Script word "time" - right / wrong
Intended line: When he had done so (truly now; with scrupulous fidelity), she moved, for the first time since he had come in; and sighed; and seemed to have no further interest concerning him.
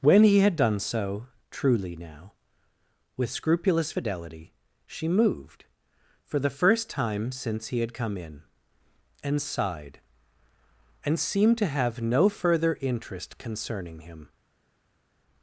right